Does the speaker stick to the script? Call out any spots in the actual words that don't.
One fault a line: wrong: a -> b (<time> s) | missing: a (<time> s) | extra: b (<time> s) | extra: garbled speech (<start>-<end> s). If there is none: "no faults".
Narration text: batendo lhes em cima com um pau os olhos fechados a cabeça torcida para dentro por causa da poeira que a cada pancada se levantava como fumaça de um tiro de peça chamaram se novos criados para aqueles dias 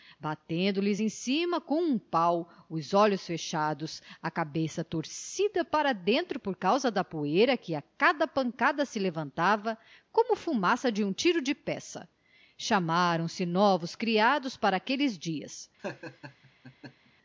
no faults